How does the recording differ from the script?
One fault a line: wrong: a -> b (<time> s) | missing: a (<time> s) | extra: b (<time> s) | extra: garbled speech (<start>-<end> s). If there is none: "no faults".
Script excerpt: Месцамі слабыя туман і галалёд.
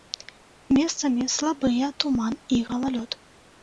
no faults